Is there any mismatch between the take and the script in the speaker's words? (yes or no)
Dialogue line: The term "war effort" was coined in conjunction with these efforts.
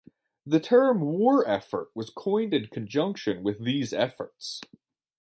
no